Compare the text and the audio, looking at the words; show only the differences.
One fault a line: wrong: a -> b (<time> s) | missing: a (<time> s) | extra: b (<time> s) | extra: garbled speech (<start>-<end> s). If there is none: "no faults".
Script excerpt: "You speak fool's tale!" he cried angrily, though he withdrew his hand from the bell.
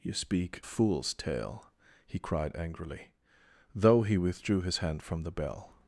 no faults